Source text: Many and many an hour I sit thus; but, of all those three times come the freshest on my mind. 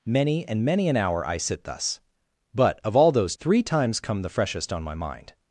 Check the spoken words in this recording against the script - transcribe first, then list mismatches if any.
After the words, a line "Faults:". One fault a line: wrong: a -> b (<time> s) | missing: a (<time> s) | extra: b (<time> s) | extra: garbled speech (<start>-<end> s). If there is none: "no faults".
Many and many an hour I sit thus; but, of all those three times come the freshest on my mind.
Faults:
no faults